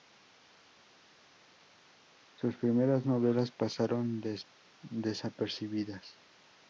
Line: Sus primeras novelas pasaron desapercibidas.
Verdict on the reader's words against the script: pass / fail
pass